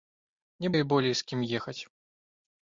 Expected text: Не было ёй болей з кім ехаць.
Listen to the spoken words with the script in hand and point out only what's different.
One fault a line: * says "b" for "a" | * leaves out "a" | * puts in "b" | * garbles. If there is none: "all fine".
* leaves out "было"